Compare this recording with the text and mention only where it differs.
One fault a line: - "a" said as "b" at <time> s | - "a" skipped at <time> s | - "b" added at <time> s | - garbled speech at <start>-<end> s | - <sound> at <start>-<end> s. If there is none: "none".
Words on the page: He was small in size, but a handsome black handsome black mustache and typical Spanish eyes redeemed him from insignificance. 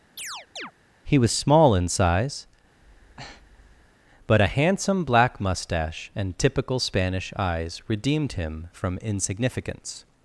- chirp at 0.2-0.7 s
- breath at 2.8-3.9 s
- "handsome black" skipped at 5.4 s